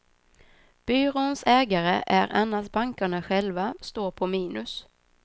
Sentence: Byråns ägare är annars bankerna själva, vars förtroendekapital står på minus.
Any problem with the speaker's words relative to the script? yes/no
yes